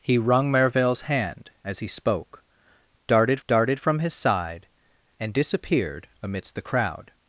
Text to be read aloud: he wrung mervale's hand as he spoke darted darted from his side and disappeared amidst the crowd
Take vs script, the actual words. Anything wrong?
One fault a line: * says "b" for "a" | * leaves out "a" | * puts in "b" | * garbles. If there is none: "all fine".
all fine